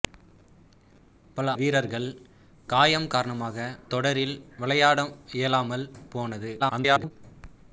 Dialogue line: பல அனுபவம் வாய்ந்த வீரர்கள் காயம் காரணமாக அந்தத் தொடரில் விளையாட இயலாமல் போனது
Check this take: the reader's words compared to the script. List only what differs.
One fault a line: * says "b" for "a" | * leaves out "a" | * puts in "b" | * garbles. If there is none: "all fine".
* leaves out "அனுபவம் வாய்ந்த"
* leaves out "அந்தத்"
* garbles